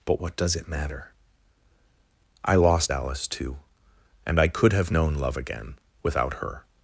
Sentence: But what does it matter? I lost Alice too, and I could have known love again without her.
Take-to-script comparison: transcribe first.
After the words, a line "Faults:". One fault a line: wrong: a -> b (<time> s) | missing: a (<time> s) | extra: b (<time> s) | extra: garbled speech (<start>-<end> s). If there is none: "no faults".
But what does it matter? I lost Alice too, and I could have known love again without her.
Faults:
no faults